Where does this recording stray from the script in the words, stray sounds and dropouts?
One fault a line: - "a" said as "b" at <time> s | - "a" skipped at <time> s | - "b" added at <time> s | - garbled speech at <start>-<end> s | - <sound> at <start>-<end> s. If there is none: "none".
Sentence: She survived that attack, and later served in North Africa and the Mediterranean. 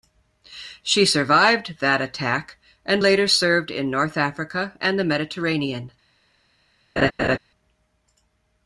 - laugh at 7.0-7.4 s